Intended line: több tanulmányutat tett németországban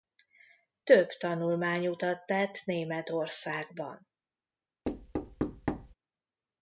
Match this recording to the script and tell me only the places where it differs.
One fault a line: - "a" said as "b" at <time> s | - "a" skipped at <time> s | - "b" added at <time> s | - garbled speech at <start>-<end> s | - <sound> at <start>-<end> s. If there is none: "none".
- thud at 4.8-5.9 s